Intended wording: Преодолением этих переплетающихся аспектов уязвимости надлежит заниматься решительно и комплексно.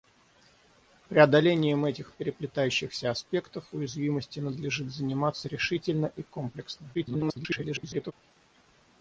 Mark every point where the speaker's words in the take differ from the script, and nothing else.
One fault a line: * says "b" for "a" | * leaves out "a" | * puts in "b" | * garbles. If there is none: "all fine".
* garbles